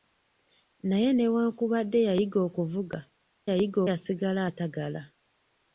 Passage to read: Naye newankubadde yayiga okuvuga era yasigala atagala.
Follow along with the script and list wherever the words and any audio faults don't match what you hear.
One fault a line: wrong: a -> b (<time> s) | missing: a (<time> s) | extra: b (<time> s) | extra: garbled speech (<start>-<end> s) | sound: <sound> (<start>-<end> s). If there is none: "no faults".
wrong: era -> yayiga (3.5 s)